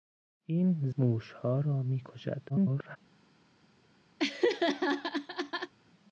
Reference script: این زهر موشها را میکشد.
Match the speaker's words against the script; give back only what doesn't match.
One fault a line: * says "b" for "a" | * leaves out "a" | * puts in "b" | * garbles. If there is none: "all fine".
* leaves out "زهر"
* garbles